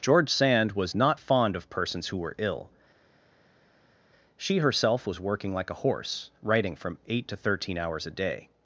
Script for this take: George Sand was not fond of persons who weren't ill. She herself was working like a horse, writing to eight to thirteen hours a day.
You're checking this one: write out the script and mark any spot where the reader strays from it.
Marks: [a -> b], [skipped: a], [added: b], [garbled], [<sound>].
George Sand was not fond of persons who [weren't -> were] ill. She herself was working like a horse, writing [to -> from] eight to thirteen hours a day.